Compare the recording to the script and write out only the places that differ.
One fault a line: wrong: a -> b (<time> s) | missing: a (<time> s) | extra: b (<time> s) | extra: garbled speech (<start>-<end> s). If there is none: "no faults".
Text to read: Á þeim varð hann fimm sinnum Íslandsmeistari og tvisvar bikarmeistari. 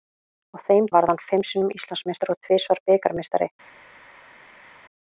no faults